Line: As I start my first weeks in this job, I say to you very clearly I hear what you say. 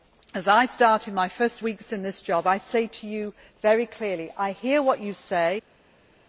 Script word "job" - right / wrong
right